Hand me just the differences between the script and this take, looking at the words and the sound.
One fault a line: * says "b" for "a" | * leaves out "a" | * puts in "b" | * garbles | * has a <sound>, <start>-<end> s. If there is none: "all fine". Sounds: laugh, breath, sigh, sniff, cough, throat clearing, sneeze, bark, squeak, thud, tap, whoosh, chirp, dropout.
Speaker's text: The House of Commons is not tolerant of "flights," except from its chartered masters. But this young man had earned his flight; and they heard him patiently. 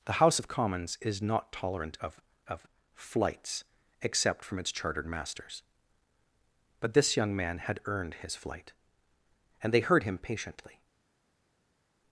* puts in "of"